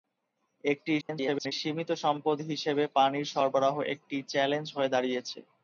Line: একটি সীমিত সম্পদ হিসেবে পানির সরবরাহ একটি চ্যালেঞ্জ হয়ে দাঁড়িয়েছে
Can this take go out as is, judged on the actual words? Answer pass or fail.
fail